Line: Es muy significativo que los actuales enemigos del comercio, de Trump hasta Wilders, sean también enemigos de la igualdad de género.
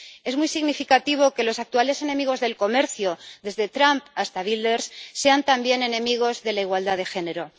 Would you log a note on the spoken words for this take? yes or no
yes